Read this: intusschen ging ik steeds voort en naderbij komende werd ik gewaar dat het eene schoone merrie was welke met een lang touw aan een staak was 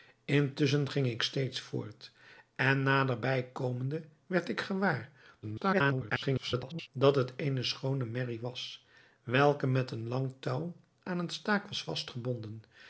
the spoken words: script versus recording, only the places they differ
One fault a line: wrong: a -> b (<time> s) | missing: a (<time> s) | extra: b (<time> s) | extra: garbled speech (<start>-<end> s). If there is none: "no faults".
extra: garbled speech (5.4-6.9 s)